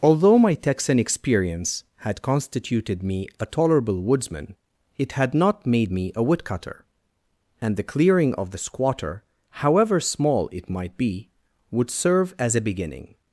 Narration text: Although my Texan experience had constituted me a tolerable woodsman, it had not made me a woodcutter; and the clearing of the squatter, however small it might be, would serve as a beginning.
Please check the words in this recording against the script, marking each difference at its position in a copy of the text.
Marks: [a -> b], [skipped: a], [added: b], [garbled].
Although my Texan experience had constituted me a tolerable woodsman, it had not made me a woodcutter; and the clearing of the squatter, however small it might be, would serve as a beginning.